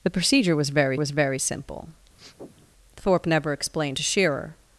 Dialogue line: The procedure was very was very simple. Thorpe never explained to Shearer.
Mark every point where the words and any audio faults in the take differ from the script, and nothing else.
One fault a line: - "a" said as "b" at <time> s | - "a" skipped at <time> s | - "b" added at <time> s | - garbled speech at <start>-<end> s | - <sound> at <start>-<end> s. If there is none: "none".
- sniff at 2.2-2.7 s